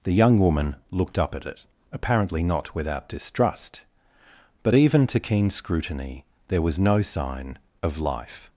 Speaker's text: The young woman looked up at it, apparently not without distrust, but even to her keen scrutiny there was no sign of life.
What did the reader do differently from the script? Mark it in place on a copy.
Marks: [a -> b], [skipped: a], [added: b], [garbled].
The young woman looked up at it, apparently not without distrust, but even to [skipped: her] keen scrutiny there was no sign of life.